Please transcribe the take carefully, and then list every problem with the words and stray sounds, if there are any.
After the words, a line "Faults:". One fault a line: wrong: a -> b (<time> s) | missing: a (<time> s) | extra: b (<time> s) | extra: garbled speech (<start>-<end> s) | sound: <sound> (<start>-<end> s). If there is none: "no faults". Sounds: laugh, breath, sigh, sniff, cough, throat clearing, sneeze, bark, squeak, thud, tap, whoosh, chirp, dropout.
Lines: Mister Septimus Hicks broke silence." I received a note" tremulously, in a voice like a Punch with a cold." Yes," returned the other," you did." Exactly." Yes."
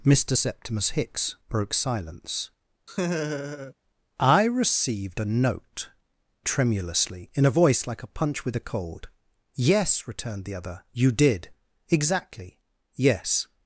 Mister Septimus Hicks broke silence." I received a note" tremulously, in a voice like a Punch with a cold." Yes," returned the other," you did." Exactly." Yes."
Faults:
sound: laugh (2.9-3.7 s)